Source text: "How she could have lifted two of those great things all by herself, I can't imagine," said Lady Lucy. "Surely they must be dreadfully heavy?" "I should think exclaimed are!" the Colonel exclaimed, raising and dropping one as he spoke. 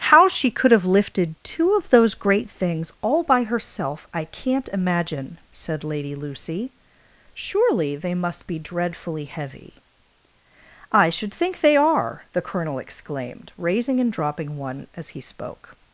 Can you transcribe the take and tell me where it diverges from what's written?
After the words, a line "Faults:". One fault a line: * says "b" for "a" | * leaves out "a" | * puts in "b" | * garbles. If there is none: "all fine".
"How she could have lifted two of those great things all by herself, I can't imagine," said Lady Lucy. "Surely they must be dreadfully heavy?" "I should think they are!" the Colonel exclaimed, raising and dropping one as he spoke.
Faults:
* says "they" for "exclaimed"